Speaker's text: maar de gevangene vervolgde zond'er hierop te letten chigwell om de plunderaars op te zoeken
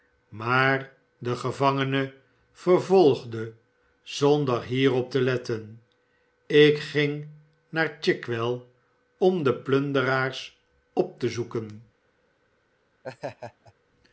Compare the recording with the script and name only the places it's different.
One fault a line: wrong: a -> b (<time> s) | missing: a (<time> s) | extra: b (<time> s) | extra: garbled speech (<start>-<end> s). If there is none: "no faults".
extra: ik ging naar (6.5 s)